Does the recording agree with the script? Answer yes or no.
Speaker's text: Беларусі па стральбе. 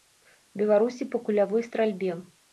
no